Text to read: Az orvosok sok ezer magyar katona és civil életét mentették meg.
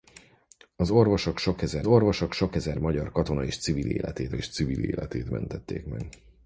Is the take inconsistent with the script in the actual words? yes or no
yes